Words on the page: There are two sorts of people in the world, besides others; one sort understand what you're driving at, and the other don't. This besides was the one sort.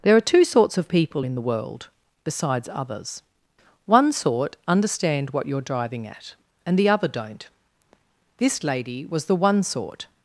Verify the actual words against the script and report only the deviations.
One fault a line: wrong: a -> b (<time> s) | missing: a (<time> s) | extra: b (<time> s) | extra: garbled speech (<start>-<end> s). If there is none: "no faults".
wrong: besides -> lady (8.6 s)